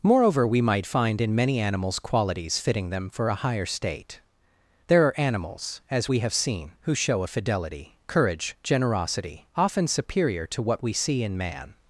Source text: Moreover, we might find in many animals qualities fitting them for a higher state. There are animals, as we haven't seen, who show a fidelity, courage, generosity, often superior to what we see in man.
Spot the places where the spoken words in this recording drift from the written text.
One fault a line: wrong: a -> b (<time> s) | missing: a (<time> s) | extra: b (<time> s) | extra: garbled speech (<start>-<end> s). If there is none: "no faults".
wrong: haven't -> have (6.2 s)